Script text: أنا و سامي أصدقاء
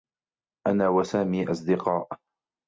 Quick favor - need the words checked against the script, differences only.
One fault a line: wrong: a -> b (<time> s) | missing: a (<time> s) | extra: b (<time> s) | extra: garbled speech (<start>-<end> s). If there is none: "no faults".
no faults